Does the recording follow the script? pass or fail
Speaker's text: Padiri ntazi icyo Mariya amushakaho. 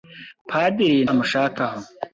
fail